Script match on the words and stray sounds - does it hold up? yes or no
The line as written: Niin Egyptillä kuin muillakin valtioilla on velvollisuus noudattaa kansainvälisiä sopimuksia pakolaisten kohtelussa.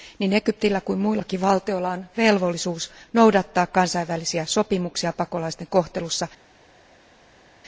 yes